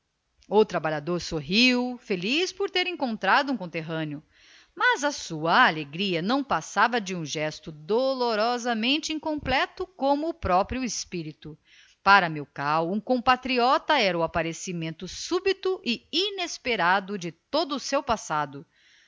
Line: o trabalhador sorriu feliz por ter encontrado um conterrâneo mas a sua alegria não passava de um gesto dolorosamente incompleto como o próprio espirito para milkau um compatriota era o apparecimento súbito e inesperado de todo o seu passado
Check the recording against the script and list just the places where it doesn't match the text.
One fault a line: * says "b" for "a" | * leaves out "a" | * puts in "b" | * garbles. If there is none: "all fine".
all fine